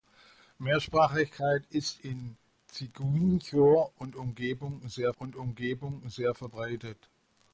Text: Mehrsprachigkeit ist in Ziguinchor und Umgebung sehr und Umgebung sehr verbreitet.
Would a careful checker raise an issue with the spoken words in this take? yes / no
no